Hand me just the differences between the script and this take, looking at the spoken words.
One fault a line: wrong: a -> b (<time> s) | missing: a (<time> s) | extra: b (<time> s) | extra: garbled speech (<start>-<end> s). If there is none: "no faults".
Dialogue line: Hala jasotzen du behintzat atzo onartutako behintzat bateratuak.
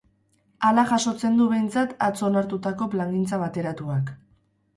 wrong: behintzat -> plangintza (3.0 s)